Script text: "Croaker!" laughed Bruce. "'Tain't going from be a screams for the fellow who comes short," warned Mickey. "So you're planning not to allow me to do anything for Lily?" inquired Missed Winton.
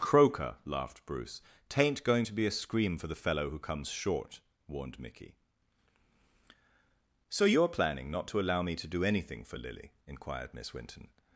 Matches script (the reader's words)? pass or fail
fail